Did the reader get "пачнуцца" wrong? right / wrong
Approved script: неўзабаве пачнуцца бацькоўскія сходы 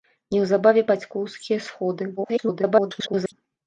wrong